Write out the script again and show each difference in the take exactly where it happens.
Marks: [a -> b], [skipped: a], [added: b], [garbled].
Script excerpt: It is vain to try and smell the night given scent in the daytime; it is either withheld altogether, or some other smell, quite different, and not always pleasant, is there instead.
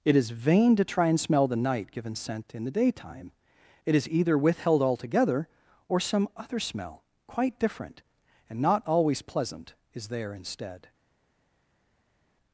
It is vain to try and smell the night given scent in the daytime; it is either withheld altogether, or some other smell, quite different, and not always pleasant, is there instead.